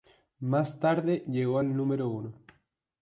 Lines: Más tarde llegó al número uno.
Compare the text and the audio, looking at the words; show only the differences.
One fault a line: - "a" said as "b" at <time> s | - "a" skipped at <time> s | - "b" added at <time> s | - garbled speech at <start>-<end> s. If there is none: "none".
none